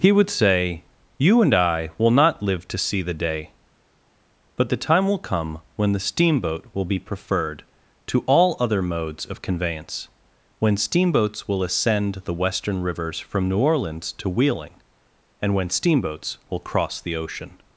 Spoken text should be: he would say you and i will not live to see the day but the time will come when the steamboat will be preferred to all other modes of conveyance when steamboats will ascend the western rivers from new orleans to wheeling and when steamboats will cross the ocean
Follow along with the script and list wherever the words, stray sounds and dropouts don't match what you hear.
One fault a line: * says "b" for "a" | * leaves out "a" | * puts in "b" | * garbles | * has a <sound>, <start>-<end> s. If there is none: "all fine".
all fine